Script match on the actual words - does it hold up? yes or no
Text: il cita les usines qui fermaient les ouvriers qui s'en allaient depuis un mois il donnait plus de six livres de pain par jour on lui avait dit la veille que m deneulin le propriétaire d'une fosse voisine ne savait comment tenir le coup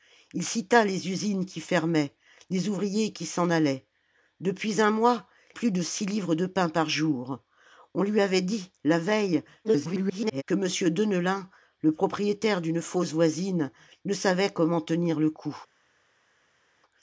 no